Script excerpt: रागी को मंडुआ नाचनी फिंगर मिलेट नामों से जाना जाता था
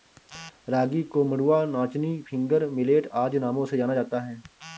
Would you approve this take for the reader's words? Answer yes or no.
no